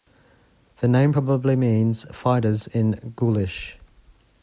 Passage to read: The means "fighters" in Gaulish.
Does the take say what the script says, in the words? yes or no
no